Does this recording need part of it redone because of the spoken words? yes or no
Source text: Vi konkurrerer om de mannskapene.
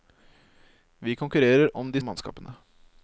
no